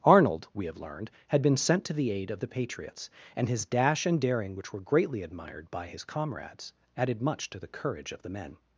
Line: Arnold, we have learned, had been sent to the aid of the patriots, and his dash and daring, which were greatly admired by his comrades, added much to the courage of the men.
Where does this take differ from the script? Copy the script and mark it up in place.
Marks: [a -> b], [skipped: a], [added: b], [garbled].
Arnold, we have learned, had been sent to the aid of the patriots, and his dash and daring, which were greatly admired by his comrades, added much to the courage of the men.